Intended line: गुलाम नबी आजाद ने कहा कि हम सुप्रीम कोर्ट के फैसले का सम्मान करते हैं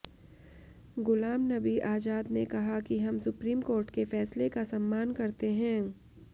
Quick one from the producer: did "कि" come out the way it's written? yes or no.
yes